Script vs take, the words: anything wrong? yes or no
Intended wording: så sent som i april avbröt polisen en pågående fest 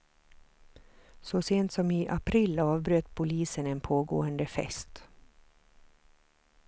no